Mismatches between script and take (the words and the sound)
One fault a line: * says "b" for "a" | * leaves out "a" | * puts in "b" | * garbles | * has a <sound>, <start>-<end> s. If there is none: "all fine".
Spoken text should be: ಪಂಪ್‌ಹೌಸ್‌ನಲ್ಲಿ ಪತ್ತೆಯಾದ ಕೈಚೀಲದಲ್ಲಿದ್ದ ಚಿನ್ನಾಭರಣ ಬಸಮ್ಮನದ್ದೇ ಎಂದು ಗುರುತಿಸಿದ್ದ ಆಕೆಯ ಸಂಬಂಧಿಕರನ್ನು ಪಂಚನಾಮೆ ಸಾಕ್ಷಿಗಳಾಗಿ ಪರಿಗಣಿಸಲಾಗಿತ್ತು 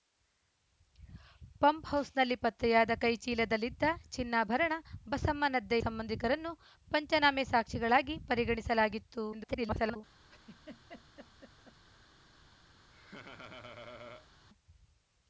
* leaves out "ಎಂದು ಗುರುತಿಸಿದ್ದ ಆಕೆಯ"
* garbles
* has a laugh, 10.3-11.8 s
* has a laugh, 12.9-14.3 s